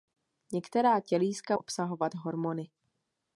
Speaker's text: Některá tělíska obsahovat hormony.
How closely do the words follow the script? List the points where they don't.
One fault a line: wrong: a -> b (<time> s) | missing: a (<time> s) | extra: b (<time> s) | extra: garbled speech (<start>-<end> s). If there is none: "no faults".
no faults